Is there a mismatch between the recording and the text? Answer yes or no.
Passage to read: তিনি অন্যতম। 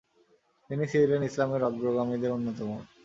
yes